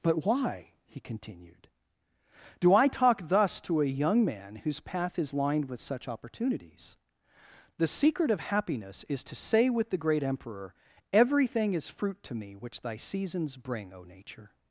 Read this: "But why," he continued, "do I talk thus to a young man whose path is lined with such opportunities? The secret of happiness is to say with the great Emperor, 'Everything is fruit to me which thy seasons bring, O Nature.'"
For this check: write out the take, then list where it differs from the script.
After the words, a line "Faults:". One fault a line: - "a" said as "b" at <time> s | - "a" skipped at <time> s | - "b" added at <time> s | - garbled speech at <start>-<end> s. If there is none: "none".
"But why," he continued, "do I talk thus to a young man whose path is lined with such opportunities? The secret of happiness is to say with the great Emperor, 'Everything is fruit to me which thy seasons bring, O Nature.'"
Faults:
none